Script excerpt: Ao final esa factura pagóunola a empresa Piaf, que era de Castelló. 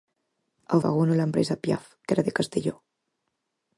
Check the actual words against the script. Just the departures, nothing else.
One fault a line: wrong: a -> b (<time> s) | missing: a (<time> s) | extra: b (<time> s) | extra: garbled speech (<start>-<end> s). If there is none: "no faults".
missing: final esa factura (0.8 s)